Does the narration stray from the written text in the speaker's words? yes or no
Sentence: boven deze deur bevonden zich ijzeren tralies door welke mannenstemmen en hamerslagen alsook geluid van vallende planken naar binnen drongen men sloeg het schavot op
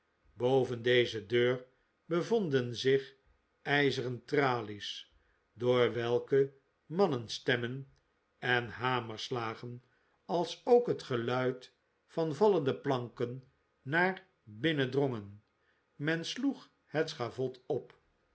yes